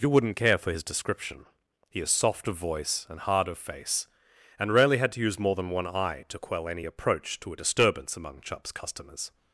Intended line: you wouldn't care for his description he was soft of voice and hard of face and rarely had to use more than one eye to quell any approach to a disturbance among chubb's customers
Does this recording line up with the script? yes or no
no